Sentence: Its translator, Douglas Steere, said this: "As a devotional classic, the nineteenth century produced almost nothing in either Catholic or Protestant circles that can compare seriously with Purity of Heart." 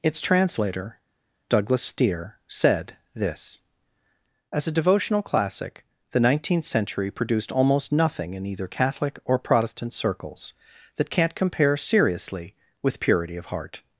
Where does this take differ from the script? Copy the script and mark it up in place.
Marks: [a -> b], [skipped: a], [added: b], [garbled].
Its translator, Douglas Steere, said this: "As a devotional classic, the nineteenth century produced almost nothing in either Catholic or Protestant circles that [can -> can't] compare seriously with Purity of Heart."